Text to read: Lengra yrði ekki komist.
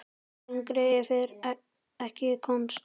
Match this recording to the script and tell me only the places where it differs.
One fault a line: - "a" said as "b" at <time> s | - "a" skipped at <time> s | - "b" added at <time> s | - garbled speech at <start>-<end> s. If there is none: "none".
none